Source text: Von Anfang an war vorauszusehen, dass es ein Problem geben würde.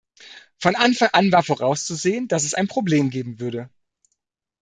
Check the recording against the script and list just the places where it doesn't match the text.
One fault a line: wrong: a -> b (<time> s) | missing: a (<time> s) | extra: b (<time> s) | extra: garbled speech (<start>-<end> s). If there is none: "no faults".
no faults